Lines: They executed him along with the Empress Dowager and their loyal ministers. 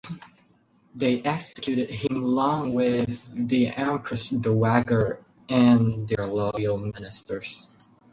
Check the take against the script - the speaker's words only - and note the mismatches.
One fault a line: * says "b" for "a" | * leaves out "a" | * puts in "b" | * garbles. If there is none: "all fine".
all fine